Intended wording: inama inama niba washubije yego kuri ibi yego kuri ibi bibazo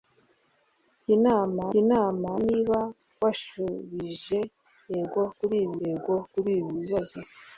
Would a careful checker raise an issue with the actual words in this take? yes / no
no